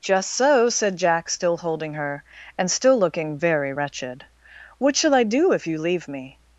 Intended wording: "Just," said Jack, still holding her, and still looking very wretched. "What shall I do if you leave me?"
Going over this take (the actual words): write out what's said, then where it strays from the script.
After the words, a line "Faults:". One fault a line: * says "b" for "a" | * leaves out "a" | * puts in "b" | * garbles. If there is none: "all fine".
"Just so," said Jack, still holding her, and still looking very wretched. "What shall I do if you leave me?"
Faults:
* puts in "so"